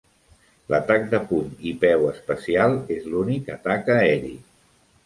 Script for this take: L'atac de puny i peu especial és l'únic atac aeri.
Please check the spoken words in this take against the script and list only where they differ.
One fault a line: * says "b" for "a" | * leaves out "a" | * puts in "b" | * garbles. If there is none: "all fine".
all fine